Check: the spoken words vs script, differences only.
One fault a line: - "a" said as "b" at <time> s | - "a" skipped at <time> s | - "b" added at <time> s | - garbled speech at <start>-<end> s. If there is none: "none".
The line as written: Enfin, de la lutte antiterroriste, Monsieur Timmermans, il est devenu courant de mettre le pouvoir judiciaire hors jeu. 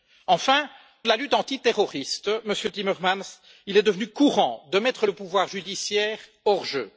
none